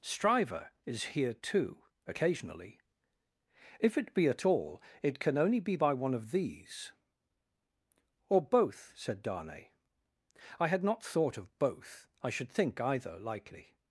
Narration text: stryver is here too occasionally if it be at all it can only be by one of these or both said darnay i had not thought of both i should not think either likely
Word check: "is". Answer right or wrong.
right